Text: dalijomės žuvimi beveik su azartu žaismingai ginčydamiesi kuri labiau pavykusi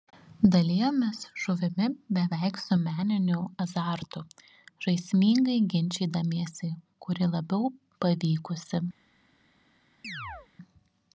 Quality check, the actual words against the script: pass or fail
fail